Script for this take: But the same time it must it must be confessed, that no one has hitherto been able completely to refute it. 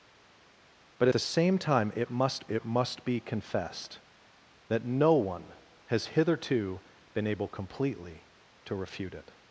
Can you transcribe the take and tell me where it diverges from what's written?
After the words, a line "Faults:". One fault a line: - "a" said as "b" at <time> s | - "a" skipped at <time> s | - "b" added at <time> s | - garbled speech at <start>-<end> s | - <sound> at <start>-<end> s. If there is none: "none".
But the same time it must it must be confessed, that no one has hitherto been able completely to refute it.
Faults:
none